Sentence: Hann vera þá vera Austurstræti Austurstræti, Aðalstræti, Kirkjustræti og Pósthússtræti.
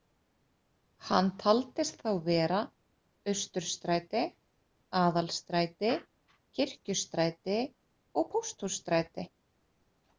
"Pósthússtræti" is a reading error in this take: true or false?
false